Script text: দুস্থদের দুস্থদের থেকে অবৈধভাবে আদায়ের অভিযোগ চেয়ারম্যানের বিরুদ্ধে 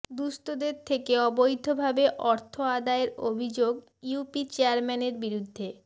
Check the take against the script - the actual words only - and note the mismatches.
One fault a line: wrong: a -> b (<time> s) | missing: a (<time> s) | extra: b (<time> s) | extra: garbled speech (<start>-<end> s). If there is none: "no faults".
missing: দুস্থদের (0.8 s)
extra: অর্থ (2.2 s)
extra: ইউপি (4.0 s)